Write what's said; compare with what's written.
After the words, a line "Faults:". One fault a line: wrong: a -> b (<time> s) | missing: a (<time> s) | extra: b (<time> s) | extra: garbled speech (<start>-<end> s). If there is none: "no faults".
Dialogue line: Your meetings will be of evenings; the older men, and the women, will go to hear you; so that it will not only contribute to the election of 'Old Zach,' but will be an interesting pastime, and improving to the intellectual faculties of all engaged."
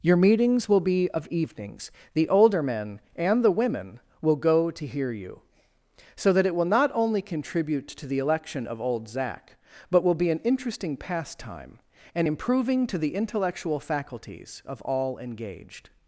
Your meetings will be of evenings; the older men, and the women, will go to hear you; so that it will not only contribute to the election of 'Old Zach,' but will be an interesting pastime, and improving to the intellectual faculties of all engaged."
Faults:
no faults